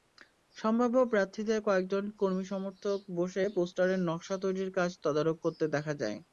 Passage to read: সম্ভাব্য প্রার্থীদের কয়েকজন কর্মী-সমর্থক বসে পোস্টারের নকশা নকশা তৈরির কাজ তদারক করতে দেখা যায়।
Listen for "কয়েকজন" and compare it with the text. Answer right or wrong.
right